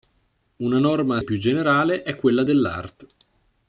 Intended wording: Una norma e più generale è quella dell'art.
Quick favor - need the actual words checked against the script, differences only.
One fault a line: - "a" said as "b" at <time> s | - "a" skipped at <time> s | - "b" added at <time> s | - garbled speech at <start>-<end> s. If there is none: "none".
none